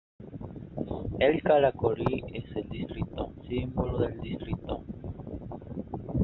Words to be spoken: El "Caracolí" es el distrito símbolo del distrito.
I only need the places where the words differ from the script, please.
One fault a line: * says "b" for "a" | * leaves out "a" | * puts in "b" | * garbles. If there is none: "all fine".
all fine